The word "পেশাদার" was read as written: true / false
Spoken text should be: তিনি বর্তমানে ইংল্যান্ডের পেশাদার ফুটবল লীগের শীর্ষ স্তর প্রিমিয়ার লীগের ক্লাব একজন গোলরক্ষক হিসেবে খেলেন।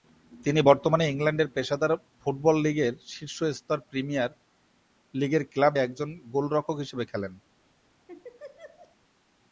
true